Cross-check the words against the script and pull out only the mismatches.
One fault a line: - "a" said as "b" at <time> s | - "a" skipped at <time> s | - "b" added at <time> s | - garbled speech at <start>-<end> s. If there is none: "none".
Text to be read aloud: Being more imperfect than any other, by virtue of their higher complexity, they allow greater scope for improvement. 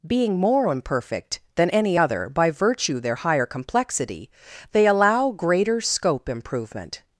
- "of" skipped at 3.0 s
- "for" skipped at 6.3 s